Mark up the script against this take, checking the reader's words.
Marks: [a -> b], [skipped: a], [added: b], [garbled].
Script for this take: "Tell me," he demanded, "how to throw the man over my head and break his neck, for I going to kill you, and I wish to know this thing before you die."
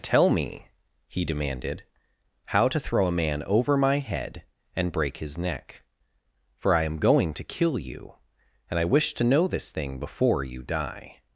"Tell me," he demanded, "how to throw [the -> a] man over my head and break his neck, for I [added: am] going to kill you, and I wish to know this thing before you die."